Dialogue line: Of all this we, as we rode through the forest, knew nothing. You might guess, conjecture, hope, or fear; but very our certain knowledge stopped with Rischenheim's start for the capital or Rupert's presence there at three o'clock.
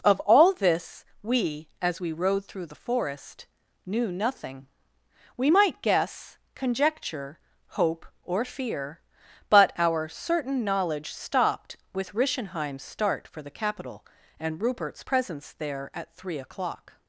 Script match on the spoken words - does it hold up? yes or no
no